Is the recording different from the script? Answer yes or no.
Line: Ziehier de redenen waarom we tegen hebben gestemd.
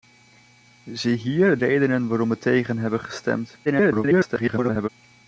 yes